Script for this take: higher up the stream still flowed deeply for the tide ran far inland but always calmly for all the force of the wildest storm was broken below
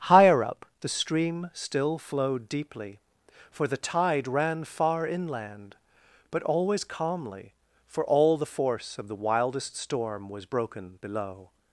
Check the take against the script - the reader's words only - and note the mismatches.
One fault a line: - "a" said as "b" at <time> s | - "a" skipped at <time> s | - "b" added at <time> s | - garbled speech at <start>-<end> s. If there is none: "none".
none